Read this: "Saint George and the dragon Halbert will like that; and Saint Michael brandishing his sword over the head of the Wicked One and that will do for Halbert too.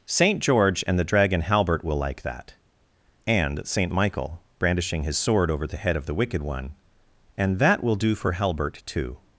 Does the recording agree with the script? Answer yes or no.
yes